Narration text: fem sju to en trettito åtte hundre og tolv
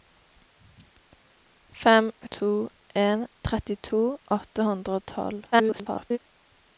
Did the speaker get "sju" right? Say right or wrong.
wrong